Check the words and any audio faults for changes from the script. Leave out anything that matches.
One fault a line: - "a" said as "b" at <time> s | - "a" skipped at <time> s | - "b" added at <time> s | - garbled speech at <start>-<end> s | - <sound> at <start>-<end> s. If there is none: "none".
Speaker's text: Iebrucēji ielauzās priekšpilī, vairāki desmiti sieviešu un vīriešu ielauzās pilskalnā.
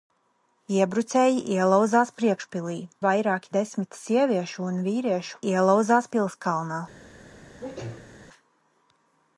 - sneeze at 7.6-8.1 s